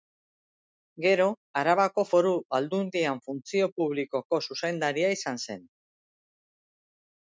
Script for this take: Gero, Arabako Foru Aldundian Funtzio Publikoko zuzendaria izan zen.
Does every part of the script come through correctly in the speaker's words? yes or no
yes